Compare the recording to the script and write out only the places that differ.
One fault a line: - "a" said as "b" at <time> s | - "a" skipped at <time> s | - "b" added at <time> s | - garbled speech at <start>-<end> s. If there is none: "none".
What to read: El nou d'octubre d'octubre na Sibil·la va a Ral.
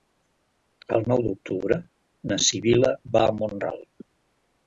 - "d'octubre" skipped at 1.8 s
- "Mont" added at 3.4 s